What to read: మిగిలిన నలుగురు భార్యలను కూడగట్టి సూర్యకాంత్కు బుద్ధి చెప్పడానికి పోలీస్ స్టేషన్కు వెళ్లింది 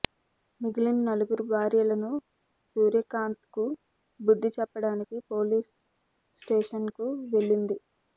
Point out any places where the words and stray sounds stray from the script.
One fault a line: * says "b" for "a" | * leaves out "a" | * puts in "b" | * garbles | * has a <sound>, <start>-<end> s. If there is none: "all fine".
* leaves out "కూడగట్టి"